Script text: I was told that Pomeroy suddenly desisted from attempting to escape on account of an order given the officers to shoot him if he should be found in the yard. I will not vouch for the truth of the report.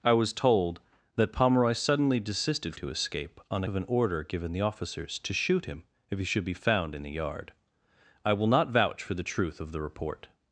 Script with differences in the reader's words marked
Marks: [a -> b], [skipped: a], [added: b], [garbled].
I was told that Pomeroy suddenly desisted [skipped: from attempting] to escape on [skipped: account] of an order given the officers to shoot him if he should be found in the yard. I will not vouch for the truth of the report.